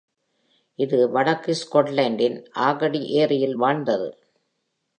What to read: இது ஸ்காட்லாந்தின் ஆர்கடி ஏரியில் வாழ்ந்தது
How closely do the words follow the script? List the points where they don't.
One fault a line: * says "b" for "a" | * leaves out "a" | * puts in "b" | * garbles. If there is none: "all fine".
* puts in "வடக்கு"